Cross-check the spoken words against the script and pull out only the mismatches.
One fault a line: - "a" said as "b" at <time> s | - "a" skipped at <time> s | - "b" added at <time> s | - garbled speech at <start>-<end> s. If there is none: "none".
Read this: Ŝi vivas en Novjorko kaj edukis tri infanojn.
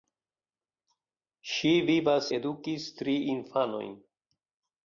- "en Novjorko kaj" skipped at 2.3 s